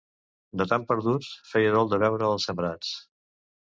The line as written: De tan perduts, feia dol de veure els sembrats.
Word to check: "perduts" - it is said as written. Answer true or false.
true